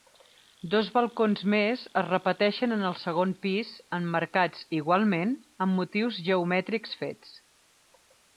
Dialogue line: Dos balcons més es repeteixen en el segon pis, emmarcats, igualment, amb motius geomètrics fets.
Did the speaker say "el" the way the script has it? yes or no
yes